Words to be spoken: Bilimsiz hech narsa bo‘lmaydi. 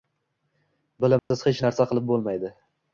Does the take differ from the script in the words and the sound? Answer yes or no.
yes